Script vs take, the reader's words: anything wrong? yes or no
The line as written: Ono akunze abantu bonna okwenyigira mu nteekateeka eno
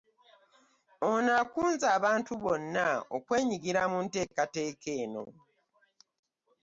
no